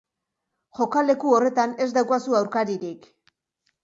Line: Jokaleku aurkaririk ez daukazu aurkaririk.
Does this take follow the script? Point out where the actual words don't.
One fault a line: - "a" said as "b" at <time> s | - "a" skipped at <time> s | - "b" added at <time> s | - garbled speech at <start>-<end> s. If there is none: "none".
- "aurkaririk" said as "horretan" at 1.4 s